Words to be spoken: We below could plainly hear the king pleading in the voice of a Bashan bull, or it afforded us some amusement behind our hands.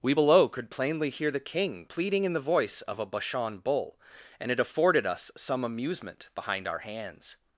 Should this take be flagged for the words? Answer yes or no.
yes